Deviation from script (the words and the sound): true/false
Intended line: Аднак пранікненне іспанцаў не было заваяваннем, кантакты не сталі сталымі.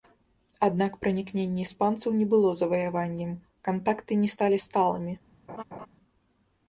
true